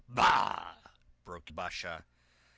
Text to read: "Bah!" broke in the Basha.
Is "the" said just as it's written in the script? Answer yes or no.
no